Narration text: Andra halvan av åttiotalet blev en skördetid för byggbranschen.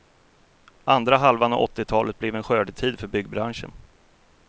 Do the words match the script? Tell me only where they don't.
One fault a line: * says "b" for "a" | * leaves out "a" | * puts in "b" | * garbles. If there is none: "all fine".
all fine